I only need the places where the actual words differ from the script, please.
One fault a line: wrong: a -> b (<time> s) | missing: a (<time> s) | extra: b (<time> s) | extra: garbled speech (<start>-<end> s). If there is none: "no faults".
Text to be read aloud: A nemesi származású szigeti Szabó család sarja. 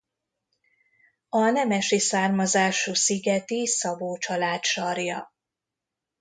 no faults